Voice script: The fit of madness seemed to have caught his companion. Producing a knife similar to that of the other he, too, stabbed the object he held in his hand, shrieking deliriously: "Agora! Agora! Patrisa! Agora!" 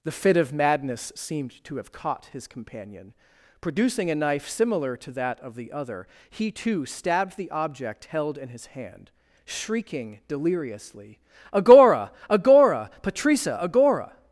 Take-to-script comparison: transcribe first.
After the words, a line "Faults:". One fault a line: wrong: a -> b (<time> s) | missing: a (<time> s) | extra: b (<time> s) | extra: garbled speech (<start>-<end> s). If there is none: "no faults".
The fit of madness seemed to have caught his companion. Producing a knife similar to that of the other he, too, stabbed the object held in his hand, shrieking deliriously: "Agora! Agora! Patrisa! Agora!"
Faults:
missing: he (8.1 s)